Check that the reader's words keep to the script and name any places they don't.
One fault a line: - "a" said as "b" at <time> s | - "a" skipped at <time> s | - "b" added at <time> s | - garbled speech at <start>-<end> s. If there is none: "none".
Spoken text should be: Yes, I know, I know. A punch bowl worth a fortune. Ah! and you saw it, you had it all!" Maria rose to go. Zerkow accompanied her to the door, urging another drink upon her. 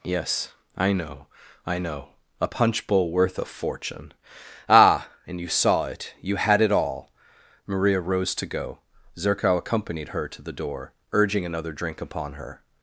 none